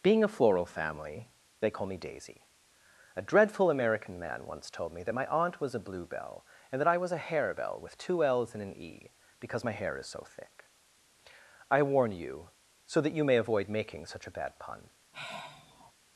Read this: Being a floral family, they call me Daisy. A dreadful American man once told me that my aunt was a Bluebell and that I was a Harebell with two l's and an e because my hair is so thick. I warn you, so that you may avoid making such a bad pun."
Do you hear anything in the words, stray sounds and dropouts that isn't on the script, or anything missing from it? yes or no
yes